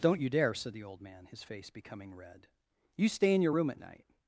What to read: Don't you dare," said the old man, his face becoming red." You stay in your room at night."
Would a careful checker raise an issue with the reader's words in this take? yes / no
no